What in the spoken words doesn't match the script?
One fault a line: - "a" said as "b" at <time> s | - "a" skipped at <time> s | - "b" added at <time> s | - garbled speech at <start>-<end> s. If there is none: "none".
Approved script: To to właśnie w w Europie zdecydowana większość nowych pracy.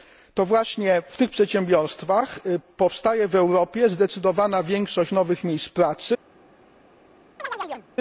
- "to" skipped at 0.5 s
- "tych przedsiębiorstwach powstaje" added at 1.2 s
- "miejsc" added at 5.4 s